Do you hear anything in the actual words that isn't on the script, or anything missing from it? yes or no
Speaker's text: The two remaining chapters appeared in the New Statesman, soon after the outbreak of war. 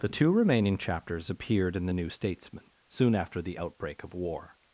no